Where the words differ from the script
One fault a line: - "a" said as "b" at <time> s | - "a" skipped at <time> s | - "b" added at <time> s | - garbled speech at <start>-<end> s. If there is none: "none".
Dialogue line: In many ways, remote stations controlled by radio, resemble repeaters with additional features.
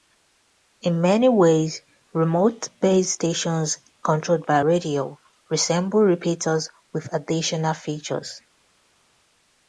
- "base" added at 2.8 s